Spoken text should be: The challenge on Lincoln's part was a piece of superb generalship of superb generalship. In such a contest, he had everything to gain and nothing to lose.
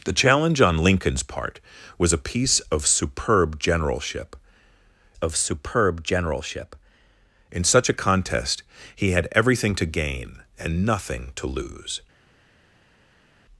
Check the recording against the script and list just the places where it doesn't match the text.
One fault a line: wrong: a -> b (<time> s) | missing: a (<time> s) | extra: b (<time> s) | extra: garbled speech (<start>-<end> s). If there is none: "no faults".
no faults